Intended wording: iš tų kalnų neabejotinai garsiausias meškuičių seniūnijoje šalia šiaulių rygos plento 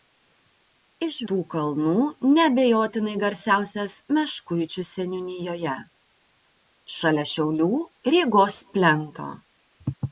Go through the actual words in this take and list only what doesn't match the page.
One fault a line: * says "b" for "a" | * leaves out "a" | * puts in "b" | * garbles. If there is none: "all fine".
all fine